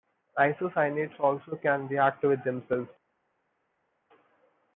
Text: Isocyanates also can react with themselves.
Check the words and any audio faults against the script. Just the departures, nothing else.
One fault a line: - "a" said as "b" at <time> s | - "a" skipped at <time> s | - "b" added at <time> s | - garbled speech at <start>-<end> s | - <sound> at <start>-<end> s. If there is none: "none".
none